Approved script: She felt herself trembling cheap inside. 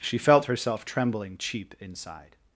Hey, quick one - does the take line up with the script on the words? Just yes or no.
yes